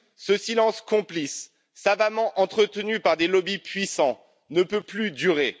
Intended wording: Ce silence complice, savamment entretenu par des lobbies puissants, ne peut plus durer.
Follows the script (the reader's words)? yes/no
yes